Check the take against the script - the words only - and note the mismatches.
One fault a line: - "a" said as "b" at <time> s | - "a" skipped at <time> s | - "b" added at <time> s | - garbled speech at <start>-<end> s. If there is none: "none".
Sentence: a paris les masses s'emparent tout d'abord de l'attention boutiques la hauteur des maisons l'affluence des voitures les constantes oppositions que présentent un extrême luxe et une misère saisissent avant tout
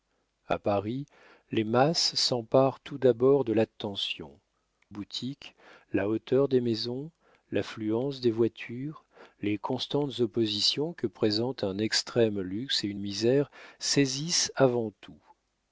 none